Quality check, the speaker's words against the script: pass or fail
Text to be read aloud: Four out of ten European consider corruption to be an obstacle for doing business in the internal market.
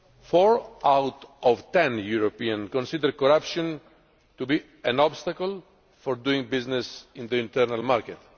pass